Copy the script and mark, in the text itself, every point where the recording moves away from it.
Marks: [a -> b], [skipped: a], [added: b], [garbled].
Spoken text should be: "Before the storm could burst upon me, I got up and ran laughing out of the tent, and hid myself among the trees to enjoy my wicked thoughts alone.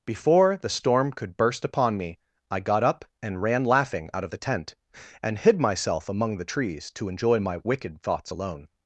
"Before the storm could burst upon me, I got up and ran laughing out of the tent, and hid myself among the trees to enjoy my wicked thoughts alone.